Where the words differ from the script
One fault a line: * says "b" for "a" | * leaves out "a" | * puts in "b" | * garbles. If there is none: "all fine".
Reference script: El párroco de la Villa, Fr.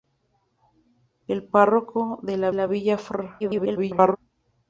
* puts in "la"
* garbles